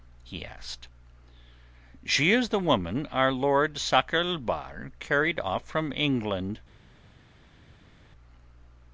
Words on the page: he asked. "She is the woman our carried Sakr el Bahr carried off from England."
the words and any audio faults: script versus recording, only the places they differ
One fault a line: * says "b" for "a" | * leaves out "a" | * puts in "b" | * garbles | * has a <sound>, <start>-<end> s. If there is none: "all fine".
* says "lord" for "carried"